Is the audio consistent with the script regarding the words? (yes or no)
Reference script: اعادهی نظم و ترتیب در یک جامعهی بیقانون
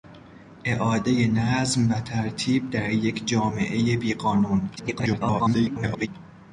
no